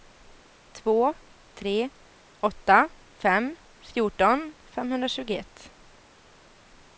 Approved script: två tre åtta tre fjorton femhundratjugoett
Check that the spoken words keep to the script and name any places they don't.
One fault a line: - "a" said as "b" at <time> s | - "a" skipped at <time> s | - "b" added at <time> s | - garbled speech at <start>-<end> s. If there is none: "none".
- "tre" said as "fem" at 3.2 s